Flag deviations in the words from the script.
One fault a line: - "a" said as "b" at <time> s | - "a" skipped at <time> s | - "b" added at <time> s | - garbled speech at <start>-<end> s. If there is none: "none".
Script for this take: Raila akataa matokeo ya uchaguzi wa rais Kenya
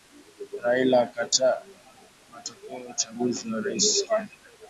none